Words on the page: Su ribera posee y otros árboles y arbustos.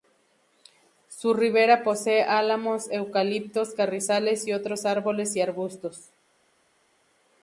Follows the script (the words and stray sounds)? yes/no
no